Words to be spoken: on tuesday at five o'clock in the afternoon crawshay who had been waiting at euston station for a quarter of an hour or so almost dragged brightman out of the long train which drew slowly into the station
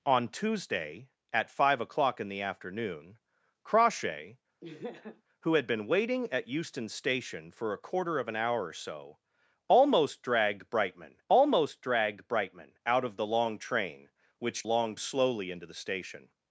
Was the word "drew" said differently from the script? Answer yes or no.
yes